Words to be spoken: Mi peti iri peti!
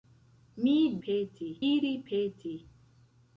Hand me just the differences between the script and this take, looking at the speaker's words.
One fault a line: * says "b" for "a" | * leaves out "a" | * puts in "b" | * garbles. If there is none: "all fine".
all fine